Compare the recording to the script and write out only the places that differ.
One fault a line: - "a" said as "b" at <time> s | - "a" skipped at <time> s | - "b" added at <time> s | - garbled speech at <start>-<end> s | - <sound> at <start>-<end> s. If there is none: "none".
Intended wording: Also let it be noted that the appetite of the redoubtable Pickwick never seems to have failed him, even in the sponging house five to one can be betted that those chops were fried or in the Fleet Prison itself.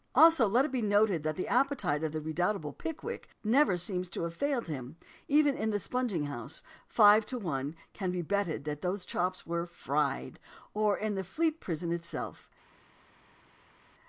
none